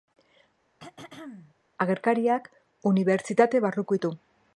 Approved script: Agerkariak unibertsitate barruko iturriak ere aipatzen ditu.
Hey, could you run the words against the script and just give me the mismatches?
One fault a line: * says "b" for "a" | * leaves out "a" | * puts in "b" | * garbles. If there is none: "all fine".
* leaves out "iturriak ere aipatzen"